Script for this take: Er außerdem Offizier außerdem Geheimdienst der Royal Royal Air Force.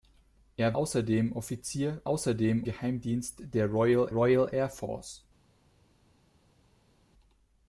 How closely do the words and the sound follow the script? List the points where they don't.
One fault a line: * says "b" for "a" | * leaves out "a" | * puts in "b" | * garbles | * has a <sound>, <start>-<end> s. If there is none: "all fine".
all fine